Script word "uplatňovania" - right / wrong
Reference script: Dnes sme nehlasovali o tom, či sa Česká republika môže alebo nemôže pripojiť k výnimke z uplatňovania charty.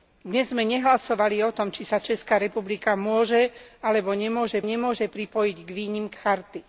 wrong